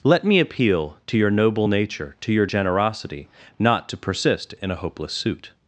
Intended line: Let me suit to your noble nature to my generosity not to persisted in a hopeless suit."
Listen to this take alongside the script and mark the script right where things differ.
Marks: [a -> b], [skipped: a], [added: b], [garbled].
Let me [suit -> appeal] to your noble nature to [my -> your] generosity not to [persisted -> persist] in a hopeless suit."